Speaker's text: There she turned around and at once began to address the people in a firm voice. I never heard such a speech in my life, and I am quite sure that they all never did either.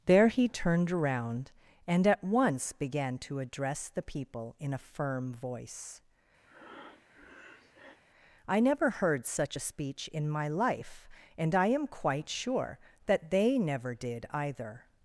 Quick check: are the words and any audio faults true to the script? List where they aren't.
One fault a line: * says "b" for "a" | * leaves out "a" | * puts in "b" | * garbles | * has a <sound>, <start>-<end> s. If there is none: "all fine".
* says "he" for "she"
* has a breath, 6.4-8.0 s
* leaves out "all"